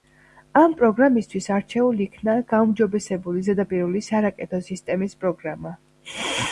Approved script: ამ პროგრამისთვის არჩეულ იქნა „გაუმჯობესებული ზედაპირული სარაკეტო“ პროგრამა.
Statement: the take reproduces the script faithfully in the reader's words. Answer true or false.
false